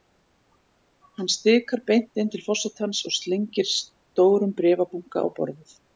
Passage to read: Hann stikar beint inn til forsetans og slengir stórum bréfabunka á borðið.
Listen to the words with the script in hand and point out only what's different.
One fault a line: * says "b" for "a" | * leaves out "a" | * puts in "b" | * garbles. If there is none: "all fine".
all fine